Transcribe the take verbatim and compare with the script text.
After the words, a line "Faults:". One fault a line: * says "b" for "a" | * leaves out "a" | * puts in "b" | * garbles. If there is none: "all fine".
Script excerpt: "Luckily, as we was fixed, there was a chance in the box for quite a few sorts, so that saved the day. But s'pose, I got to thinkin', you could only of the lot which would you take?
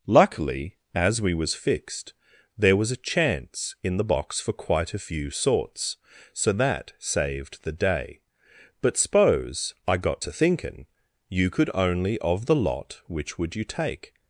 "Luckily, as we was fixed, there was a chance in the box for quite a few sorts, so that saved the day. But s'pose, I got to thinkin', you could only of the lot which would you take?
Faults:
all fine